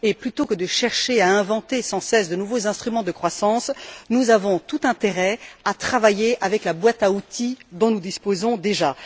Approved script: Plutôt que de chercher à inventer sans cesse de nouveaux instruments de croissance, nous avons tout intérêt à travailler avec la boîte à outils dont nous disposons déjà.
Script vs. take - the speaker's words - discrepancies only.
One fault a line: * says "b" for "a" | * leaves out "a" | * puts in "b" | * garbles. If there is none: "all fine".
all fine